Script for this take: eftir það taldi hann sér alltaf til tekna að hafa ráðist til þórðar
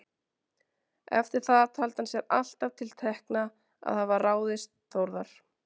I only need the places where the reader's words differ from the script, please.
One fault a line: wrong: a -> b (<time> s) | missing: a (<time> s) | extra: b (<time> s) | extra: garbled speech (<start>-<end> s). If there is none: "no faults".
missing: til (4.7 s)